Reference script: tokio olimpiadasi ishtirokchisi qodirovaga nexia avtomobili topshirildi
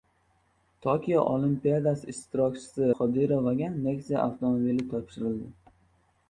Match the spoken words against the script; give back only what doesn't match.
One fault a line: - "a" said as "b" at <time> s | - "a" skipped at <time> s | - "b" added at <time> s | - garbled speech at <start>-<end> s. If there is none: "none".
none